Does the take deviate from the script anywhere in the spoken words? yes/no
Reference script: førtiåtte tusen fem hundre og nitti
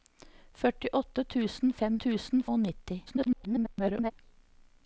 yes